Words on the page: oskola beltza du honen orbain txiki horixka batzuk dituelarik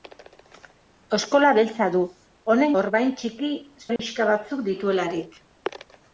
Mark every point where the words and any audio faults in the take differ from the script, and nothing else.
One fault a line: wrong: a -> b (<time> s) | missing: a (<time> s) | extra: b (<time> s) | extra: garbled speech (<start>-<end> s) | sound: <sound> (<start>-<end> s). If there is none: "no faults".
sound: dropout (4.0-4.0 s)